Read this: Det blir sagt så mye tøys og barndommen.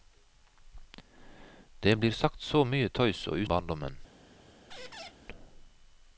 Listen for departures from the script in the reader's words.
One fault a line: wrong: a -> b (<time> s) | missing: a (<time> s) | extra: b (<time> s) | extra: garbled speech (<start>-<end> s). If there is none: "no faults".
no faults